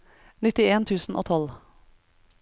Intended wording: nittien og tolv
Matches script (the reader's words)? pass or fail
fail